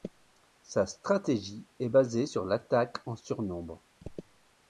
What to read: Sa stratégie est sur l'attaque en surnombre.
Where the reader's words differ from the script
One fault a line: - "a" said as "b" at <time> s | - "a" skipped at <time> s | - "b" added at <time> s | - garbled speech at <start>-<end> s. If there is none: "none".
- "basée" added at 1.9 s